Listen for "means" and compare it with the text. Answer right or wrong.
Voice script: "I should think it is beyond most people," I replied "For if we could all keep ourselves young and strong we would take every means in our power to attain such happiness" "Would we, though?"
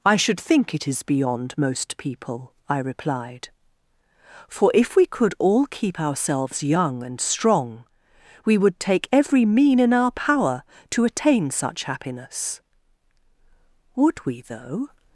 wrong